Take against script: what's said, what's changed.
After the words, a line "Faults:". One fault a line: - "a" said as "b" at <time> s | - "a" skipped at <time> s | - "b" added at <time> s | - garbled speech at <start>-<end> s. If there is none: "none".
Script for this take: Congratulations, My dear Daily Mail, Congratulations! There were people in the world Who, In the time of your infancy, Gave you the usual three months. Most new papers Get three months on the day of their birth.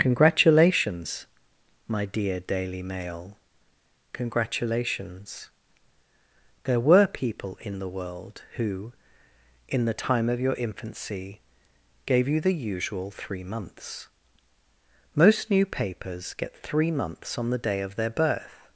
Congratulations, My dear Daily Mail, Congratulations! There were people in the world Who, In the time of your infancy, Gave you the usual three months. Most new papers Get three months on the day of their birth.
Faults:
none